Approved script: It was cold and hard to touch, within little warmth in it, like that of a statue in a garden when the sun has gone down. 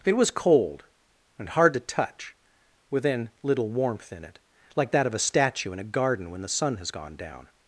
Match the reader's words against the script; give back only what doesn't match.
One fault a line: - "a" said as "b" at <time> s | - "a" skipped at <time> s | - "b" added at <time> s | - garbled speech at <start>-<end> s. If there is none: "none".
none